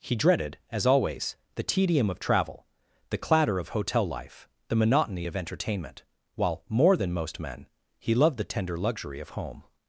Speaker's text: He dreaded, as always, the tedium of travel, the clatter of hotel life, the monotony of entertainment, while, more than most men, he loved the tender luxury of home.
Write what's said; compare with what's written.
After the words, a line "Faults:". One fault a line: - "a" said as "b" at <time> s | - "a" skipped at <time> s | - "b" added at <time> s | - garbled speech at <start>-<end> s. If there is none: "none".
He dreaded, as always, the tedium of travel, the clatter of hotel life, the monotony of entertainment, while, more than most men, he loved the tender luxury of home.
Faults:
none